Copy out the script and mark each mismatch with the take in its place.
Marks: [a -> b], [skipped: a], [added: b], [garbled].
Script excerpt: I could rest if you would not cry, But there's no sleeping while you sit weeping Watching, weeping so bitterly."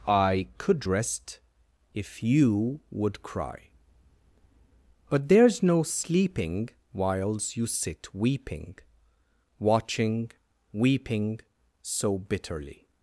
I could rest if you would [skipped: not] cry, But there's no sleeping [while -> whiles] you sit weeping Watching, weeping so bitterly."